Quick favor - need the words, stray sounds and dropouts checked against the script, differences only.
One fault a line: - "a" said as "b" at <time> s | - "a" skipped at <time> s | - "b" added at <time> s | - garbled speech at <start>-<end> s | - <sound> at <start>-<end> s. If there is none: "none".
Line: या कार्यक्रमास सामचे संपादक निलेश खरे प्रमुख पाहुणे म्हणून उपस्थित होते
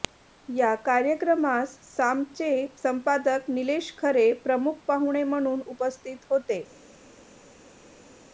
none